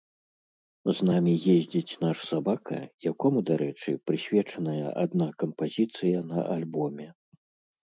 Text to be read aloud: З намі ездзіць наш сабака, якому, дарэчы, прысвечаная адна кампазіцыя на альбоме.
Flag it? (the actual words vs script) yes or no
no